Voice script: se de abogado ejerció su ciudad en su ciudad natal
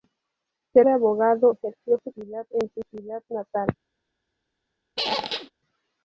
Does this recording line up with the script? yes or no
yes